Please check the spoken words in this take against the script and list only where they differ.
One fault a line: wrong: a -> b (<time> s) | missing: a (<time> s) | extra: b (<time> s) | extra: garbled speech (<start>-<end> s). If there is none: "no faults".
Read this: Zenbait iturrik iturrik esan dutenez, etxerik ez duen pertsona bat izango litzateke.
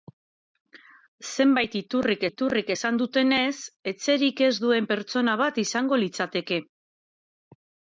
no faults